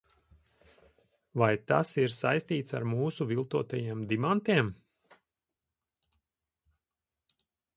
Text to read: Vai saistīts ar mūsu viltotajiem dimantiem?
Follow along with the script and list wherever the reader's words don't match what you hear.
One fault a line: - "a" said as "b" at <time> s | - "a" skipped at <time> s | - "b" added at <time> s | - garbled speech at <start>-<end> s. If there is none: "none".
- "tas ir" added at 1.7 s